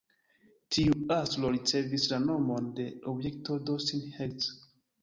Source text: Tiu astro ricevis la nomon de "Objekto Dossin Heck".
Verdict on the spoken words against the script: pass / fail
pass